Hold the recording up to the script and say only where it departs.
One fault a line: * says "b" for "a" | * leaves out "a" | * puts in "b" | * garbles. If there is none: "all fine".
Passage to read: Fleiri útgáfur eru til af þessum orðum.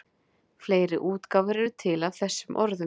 all fine